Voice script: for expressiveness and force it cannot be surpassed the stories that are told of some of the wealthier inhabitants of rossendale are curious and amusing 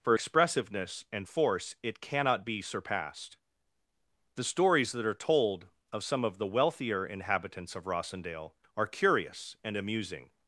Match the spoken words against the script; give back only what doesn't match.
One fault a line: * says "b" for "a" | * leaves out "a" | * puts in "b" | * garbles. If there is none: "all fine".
all fine